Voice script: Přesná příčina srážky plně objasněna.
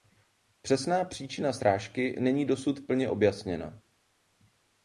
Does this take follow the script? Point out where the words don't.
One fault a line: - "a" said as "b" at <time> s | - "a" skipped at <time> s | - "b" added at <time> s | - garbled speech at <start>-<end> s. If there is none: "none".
- "není dosud" added at 2.2 s